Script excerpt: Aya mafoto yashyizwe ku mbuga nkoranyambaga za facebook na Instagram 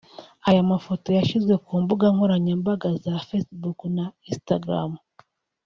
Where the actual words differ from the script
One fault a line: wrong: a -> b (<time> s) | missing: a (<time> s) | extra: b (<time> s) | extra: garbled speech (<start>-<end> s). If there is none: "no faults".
no faults